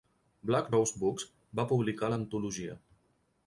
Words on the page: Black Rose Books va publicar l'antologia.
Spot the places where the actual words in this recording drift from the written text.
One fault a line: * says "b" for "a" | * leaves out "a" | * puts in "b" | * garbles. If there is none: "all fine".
all fine